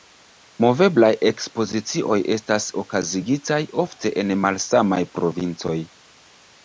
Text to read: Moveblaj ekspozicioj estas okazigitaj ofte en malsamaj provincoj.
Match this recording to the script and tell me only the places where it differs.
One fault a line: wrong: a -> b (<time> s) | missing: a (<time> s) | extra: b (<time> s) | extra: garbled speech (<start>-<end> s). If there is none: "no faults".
no faults